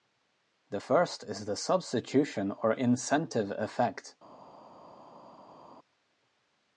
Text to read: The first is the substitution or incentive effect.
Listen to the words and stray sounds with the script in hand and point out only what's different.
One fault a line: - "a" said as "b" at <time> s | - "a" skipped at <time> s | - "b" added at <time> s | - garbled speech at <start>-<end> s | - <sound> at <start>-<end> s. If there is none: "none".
none